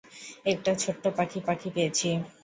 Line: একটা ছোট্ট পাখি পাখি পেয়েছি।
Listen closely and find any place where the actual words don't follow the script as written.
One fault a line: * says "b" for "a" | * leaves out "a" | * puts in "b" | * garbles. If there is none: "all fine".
all fine